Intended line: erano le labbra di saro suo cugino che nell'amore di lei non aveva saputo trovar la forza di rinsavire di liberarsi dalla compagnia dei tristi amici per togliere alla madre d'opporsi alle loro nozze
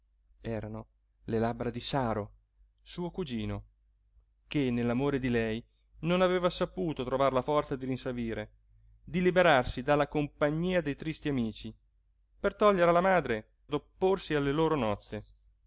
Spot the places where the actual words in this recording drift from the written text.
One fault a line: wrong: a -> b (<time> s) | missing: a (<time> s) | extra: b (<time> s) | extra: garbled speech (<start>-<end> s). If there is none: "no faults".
no faults